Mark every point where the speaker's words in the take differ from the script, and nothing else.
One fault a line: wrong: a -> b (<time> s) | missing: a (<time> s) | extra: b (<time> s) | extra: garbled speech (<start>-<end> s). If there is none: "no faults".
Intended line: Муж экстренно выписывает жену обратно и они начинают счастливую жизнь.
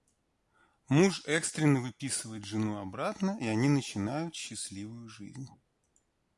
no faults